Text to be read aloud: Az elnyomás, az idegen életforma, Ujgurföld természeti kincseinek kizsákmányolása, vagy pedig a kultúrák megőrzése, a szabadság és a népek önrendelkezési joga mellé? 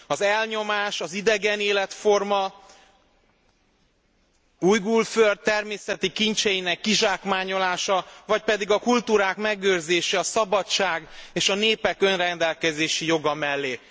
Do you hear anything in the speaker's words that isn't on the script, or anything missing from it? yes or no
no